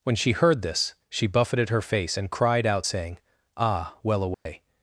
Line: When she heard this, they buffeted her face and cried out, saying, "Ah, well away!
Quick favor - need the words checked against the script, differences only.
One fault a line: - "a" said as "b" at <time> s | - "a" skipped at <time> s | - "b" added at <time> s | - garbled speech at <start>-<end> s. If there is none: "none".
- "they" said as "she" at 1.1 s